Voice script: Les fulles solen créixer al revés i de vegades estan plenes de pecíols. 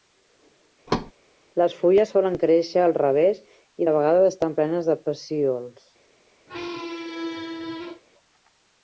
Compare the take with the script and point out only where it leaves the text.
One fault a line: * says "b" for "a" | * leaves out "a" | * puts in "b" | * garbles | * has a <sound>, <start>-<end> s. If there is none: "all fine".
* has a thud, 0.9-1.1 s
* has a squeak, 6.5-8.0 s